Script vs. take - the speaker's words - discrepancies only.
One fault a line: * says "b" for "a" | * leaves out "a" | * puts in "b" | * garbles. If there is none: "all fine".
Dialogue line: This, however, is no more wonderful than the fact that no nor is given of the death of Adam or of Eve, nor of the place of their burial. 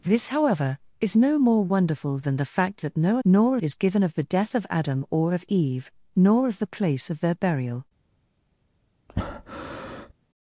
all fine